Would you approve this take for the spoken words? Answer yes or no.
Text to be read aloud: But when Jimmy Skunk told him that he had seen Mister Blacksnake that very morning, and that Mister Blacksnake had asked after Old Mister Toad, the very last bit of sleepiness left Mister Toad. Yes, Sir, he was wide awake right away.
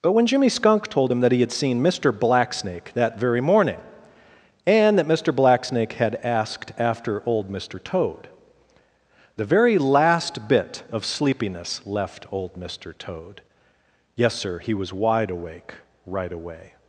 no